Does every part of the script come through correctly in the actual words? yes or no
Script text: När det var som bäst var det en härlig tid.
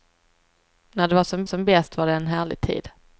no